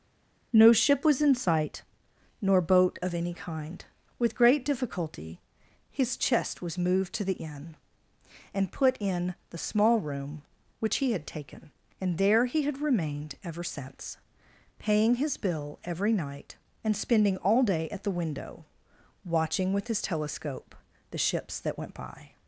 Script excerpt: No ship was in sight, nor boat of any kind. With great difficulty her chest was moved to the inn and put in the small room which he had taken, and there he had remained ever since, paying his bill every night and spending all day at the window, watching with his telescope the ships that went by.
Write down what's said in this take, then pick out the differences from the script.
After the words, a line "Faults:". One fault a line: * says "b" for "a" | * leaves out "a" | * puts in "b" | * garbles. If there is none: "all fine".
No ship was in sight, nor boat of any kind. With great difficulty his chest was moved to the inn and put in the small room which he had taken, and there he had remained ever since, paying his bill every night and spending all day at the window, watching with his telescope the ships that went by.
Faults:
* says "his" for "her"